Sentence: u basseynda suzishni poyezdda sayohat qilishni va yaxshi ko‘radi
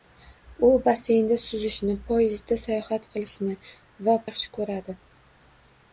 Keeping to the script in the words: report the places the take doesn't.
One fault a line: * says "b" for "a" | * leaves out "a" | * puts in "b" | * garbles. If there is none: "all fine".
all fine